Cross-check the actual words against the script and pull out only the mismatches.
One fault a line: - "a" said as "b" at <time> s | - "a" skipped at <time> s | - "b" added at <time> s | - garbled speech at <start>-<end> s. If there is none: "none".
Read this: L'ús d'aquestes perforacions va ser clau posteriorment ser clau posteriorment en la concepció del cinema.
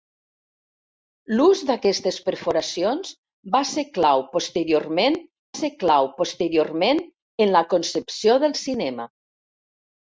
none